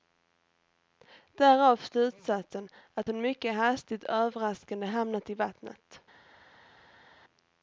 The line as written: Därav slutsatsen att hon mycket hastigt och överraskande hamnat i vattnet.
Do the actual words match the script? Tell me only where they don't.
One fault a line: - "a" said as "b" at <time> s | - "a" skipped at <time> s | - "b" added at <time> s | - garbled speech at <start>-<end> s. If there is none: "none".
none